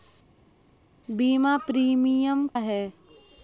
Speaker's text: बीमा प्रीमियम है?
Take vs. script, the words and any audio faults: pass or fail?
pass